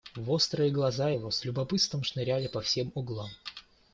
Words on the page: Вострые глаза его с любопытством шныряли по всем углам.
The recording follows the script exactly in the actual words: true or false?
true